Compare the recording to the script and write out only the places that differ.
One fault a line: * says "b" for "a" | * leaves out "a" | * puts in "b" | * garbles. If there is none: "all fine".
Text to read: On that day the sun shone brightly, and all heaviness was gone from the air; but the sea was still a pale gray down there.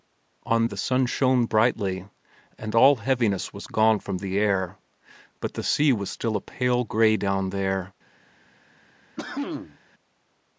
* leaves out "that day"